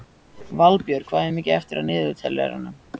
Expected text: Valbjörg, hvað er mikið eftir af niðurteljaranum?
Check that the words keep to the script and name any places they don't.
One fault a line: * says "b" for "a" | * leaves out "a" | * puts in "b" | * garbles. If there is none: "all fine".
all fine